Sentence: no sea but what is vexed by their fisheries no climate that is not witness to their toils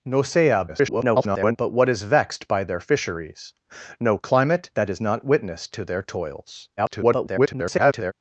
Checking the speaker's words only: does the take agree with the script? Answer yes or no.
no